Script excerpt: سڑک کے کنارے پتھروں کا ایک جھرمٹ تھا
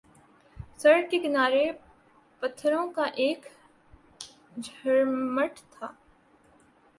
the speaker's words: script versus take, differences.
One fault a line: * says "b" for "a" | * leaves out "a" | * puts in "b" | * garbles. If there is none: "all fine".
all fine